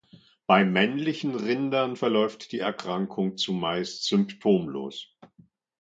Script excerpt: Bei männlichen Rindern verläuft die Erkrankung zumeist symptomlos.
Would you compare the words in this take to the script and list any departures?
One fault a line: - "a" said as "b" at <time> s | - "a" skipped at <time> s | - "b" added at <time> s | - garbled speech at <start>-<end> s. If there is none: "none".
none